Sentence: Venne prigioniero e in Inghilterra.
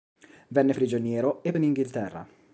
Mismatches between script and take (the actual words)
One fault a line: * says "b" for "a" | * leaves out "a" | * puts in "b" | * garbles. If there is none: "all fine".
all fine